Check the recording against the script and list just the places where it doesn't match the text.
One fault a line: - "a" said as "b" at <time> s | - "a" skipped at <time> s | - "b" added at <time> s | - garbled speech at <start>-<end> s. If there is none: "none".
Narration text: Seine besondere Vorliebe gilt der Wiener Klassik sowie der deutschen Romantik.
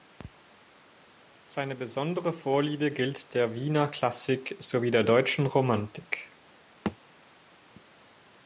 none